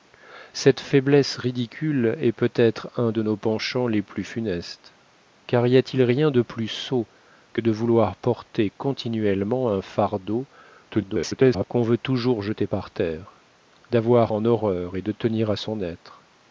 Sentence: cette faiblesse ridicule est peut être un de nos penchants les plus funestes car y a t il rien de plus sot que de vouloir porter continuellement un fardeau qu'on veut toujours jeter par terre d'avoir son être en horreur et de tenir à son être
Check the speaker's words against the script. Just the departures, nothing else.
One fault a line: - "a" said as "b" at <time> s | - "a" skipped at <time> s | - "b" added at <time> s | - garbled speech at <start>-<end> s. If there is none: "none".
- garbled speech at 10.9-11.7 s
- "son être" skipped at 14.3 s